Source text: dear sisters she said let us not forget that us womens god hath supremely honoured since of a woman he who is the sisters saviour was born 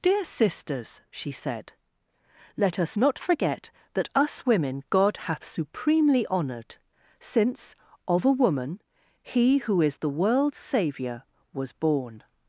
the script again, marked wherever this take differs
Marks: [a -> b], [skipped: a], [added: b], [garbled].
dear sisters she said let us not forget that us [womens -> women] god hath supremely honoured since of a woman he who is the [sisters -> world's] saviour was born